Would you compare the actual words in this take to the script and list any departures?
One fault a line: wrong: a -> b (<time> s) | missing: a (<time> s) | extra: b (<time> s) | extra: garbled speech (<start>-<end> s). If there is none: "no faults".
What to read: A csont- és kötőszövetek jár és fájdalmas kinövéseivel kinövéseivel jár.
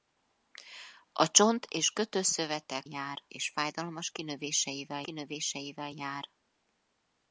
no faults